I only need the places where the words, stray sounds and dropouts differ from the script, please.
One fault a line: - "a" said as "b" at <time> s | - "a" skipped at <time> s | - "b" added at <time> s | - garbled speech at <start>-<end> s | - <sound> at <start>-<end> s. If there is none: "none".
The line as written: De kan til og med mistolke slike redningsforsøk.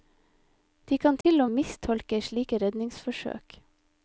- dropout at 1.2-1.2 s
- "med" skipped at 1.5 s